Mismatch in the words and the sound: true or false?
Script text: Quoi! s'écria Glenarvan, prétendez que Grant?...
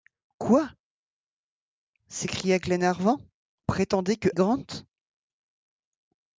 false